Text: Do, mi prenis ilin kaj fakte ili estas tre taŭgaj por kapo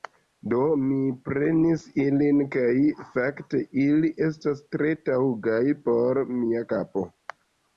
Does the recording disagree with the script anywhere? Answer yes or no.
yes